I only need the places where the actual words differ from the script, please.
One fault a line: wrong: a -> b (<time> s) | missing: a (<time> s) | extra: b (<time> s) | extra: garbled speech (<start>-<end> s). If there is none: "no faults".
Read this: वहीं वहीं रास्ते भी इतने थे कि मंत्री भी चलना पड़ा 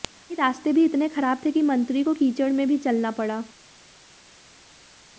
missing: वहीं (0.3 s)
extra: खराब (1.1 s)
extra: को कीचड़ में (2.0 s)